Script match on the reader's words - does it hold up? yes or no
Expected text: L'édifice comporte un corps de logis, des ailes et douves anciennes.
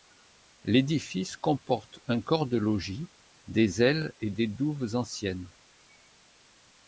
no